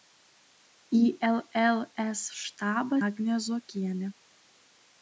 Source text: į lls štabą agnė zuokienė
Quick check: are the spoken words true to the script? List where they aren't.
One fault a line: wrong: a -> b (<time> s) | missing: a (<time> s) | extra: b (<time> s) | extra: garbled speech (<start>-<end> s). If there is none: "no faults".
no faults